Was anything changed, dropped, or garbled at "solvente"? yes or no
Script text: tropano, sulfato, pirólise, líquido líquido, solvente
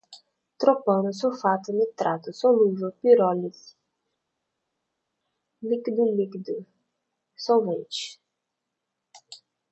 no